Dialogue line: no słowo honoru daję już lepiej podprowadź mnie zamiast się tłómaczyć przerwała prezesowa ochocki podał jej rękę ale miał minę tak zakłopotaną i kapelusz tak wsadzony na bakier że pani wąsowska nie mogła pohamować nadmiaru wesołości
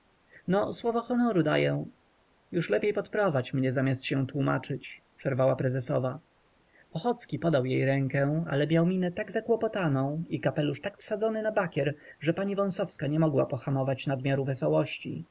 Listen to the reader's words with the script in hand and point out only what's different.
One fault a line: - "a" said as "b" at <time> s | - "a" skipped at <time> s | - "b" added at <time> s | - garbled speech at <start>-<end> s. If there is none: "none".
none